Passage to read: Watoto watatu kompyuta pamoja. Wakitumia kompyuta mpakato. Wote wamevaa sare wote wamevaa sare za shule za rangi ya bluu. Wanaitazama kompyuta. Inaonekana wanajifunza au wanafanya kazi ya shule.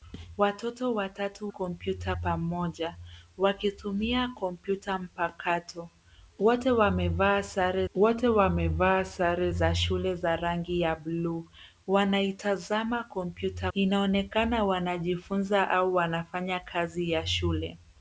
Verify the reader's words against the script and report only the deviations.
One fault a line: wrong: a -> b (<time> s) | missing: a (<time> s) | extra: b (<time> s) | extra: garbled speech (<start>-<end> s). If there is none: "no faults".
no faults